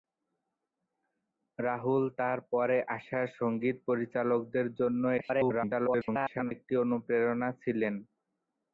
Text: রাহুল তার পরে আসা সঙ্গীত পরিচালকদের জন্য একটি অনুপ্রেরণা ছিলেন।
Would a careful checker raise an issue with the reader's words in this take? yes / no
yes